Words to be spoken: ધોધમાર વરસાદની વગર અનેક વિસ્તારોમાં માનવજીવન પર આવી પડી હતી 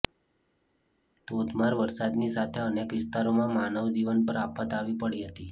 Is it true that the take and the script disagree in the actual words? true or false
true